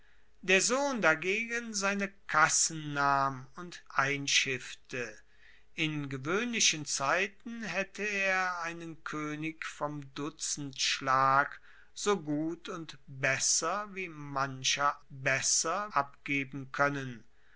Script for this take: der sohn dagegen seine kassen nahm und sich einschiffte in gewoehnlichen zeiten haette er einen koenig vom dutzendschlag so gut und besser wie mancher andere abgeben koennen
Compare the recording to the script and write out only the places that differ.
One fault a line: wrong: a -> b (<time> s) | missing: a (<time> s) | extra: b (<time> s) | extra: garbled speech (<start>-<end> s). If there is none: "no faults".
missing: sich (3.8 s)
wrong: andere -> besser (15.1 s)